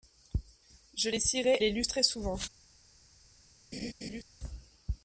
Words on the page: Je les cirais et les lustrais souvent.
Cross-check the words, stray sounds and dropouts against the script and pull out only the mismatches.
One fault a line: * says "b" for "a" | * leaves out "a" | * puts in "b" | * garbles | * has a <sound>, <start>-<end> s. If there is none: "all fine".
* leaves out "et"
* has a laugh, 3.7-4.2 s